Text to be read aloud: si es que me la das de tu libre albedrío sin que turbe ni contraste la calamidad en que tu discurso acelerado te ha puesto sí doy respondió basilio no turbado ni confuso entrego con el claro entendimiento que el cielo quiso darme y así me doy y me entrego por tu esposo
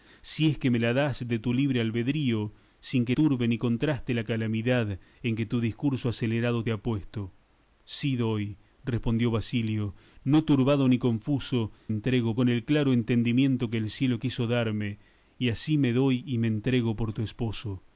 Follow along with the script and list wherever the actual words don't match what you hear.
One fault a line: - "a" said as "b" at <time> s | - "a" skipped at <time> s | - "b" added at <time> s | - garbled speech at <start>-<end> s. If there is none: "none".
none